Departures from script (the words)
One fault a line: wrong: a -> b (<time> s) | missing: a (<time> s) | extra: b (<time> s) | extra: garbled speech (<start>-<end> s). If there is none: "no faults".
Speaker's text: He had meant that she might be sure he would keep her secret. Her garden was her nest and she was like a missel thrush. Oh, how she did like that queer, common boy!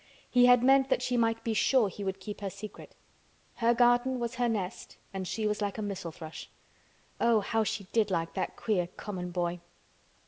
no faults